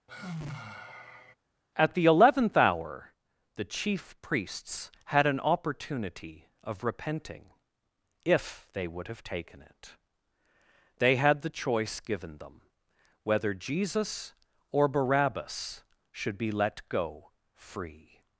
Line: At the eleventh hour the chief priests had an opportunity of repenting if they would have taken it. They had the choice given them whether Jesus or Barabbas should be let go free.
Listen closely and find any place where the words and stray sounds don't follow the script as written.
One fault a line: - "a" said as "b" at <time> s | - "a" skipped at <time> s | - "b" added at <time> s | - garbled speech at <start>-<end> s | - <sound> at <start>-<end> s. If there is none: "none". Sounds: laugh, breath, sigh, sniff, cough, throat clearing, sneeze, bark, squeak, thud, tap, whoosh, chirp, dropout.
- sigh at 0.1-1.4 s